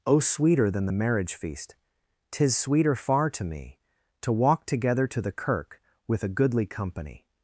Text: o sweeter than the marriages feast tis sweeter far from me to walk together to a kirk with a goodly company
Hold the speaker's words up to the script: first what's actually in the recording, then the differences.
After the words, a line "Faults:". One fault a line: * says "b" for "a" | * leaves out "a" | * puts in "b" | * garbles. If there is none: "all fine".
o sweeter than the marriage feast tis sweeter far to me to walk together to the kirk with a goodly company
Faults:
* says "marriage" for "marriages"
* says "to" for "from"
* says "the" for "a"